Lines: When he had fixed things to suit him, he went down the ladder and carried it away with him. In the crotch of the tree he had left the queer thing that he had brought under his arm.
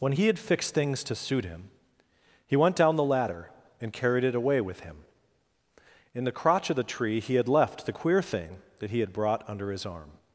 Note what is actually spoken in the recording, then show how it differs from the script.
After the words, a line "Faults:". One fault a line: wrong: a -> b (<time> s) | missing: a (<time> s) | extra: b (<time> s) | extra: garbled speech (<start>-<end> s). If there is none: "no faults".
When he had fixed things to suit him, he went down the ladder and carried it away with him. In the crotch of the tree he had left the queer thing that he had brought under his arm.
Faults:
no faults